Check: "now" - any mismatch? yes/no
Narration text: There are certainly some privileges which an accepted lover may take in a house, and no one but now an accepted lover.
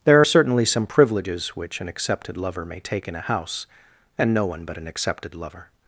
yes